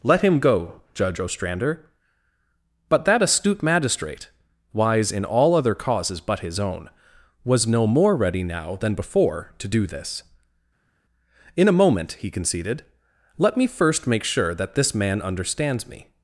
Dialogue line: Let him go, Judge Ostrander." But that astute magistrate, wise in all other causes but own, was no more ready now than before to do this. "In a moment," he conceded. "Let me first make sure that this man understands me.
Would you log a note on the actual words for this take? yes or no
yes